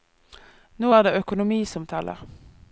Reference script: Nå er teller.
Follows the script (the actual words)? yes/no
no